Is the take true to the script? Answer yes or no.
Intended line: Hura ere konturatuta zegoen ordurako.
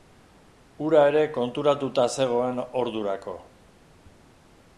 yes